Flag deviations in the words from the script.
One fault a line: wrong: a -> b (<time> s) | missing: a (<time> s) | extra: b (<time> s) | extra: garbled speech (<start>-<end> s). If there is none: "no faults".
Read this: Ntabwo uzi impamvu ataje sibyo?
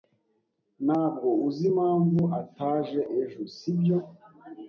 extra: ejo (3.2 s)